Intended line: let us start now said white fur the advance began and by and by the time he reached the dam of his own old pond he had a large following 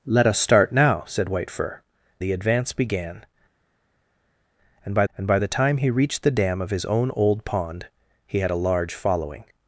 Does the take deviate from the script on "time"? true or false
false